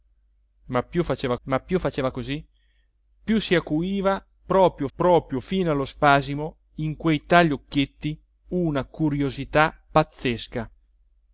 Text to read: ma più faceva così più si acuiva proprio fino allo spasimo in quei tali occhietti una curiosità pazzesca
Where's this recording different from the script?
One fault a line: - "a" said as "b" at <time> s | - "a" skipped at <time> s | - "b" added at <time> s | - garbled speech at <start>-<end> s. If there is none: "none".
- "ma più faceva" added at 1.4 s
- "proprio" added at 5.0 s